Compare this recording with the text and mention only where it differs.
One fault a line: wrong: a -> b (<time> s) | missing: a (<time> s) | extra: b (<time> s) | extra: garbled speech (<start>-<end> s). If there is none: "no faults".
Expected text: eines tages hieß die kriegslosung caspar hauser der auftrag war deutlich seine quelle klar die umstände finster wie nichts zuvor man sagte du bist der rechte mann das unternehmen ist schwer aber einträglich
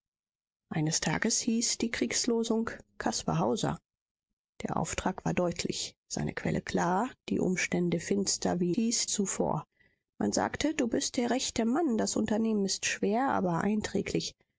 wrong: nichts -> hieß (8.7 s)